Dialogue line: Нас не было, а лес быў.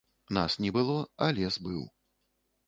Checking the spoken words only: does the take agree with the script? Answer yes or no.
yes